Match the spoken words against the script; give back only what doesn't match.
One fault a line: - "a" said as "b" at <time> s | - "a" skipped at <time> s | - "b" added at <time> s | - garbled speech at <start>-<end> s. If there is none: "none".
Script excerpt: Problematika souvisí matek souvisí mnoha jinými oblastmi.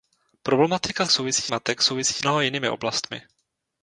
none